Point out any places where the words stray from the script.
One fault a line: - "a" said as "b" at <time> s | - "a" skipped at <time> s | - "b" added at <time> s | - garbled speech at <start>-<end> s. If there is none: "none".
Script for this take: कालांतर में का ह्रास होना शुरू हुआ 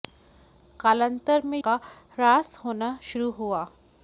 none